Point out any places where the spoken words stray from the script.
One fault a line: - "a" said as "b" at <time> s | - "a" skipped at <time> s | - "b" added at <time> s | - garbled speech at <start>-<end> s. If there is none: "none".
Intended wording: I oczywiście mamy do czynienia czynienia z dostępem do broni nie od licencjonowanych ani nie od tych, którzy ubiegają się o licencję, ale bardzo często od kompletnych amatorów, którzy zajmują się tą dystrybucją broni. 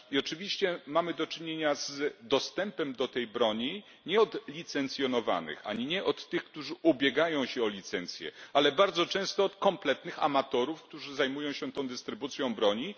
- "czynienia" skipped at 1.8 s
- "tej" added at 3.1 s